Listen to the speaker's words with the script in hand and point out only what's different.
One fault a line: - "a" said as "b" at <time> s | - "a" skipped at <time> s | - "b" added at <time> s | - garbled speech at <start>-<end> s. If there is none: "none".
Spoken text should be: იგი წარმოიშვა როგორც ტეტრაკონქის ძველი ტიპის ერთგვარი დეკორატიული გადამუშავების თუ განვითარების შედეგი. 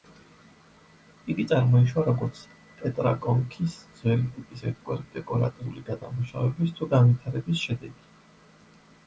none